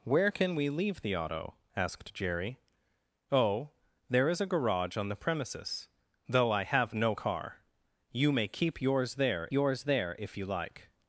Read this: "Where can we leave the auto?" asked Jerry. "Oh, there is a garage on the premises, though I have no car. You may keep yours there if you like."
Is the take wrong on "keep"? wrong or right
right